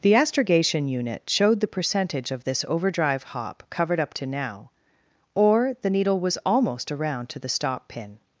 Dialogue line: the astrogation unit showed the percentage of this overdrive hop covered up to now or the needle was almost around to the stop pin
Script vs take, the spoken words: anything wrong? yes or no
no